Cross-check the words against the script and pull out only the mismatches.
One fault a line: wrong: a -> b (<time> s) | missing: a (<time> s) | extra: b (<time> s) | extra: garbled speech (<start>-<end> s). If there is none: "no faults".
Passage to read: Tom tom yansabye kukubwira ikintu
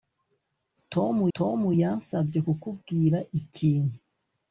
no faults